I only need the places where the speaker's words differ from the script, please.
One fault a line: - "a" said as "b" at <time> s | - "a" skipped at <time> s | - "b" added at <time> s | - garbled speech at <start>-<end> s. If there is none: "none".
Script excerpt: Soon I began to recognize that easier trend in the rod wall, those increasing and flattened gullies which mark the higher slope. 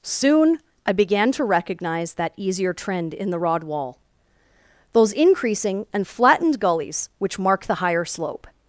none